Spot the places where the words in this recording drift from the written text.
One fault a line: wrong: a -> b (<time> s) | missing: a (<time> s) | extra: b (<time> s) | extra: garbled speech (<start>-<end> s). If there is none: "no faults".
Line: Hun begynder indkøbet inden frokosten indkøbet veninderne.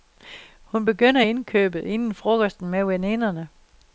wrong: indkøbet -> med (2.7 s)